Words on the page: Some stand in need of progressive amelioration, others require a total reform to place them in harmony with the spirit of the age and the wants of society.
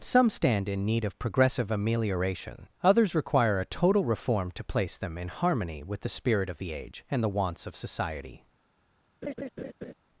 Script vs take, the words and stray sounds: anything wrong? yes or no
yes